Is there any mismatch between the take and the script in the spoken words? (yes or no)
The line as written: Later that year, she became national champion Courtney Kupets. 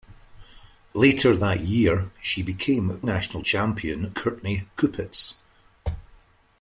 no